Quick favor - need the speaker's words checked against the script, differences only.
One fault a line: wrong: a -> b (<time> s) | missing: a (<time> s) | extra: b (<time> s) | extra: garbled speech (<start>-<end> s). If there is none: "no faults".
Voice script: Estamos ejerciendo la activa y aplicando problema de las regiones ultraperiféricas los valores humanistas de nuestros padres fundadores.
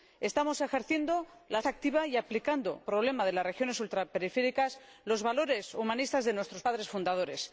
no faults